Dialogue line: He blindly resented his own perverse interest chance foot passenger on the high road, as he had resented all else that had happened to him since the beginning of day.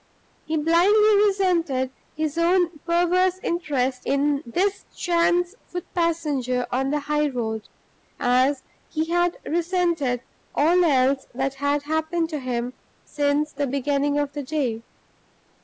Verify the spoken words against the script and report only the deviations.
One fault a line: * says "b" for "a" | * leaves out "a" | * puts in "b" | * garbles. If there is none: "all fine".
* puts in "in this"
* puts in "the"